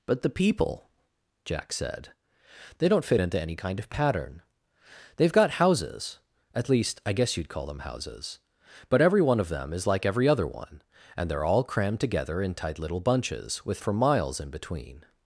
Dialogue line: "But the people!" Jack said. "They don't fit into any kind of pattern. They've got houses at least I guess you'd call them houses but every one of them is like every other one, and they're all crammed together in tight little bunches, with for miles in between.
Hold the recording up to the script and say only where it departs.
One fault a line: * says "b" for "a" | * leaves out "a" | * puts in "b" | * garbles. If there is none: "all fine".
all fine